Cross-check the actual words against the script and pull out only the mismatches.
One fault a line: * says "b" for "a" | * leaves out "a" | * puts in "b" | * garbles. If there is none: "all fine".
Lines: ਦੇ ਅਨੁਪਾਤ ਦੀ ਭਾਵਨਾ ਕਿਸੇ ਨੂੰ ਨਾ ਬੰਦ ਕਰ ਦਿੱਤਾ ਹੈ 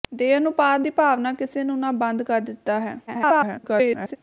* garbles